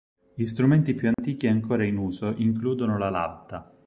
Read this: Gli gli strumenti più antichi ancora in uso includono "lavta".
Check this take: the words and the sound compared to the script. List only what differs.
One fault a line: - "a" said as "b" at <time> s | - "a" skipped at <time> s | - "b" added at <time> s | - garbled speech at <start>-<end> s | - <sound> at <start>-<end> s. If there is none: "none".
- "gli" skipped at 0.5 s
- dropout at 1.1-1.2 s
- "la" added at 3.0 s